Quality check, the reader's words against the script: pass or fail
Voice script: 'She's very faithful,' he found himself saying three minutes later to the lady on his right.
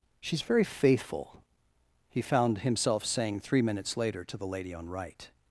fail